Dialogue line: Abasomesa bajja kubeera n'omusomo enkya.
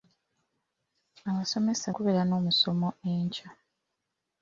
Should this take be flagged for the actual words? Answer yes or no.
yes